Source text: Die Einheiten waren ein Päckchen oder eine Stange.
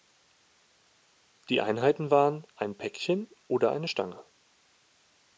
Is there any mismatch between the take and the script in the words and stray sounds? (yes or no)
no